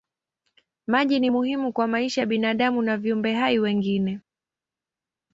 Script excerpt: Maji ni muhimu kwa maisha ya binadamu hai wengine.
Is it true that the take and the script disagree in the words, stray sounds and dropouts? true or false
true